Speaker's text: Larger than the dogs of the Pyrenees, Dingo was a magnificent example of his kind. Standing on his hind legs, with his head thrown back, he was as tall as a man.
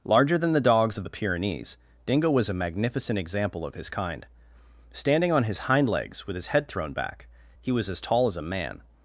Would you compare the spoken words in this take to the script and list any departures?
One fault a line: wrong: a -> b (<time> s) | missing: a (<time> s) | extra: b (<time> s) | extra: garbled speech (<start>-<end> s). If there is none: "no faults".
no faults